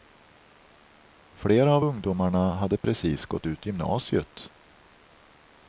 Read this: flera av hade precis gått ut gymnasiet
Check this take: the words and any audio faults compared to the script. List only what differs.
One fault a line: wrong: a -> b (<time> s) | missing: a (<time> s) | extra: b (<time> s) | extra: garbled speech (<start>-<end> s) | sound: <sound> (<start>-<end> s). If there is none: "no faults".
extra: ungdomarna (1.8 s)
sound: dropout (2.8-2.8 s)